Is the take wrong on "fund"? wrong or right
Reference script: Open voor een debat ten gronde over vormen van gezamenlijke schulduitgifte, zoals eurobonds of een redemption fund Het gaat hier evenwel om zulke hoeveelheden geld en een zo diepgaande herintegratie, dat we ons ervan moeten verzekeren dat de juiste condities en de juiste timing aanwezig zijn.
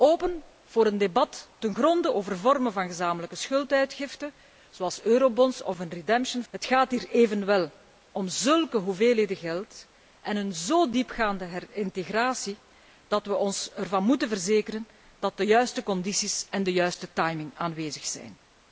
wrong